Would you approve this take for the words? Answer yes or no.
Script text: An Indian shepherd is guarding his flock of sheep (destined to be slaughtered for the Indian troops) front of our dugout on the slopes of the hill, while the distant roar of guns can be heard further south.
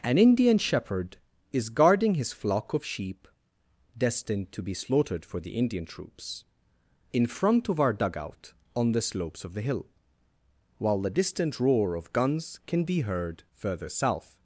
no